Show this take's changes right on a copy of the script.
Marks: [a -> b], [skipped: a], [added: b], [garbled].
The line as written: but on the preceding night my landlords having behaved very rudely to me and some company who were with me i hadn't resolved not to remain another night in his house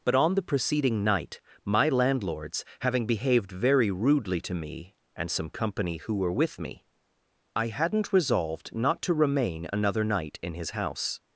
but on the preceding night my landlords having behaved very rudely to me and some company who were with me i hadn't resolved not to remain another night in his house